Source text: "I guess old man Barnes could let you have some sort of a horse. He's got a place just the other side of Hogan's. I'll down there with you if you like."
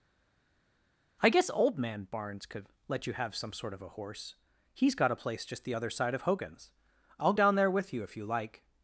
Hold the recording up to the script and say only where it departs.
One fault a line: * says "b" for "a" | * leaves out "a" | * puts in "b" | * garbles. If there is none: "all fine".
all fine